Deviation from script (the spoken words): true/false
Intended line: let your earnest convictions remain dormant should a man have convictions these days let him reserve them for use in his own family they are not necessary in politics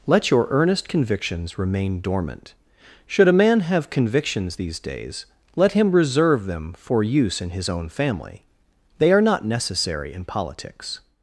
false